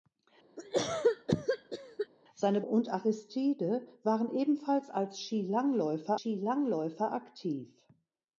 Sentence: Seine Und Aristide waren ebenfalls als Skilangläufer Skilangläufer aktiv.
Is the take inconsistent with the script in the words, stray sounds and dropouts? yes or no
yes